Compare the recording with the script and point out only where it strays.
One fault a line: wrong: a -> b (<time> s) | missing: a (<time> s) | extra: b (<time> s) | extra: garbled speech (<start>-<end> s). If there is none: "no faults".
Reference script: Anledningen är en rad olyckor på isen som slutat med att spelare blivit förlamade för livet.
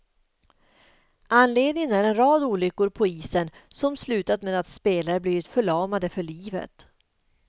no faults